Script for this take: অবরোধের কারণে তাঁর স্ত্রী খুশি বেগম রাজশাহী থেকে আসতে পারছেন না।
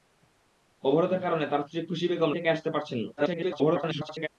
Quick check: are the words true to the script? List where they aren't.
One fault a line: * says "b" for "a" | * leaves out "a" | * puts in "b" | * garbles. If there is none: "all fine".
* leaves out "রাজশাহী"
* garbles